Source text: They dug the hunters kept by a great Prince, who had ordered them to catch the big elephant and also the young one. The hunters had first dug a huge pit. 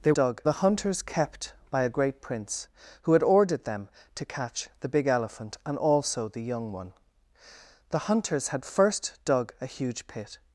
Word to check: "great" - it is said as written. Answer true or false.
true